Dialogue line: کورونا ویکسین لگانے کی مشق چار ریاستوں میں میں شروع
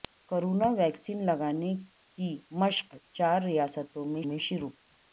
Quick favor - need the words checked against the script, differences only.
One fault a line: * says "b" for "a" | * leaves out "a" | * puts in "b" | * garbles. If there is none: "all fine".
all fine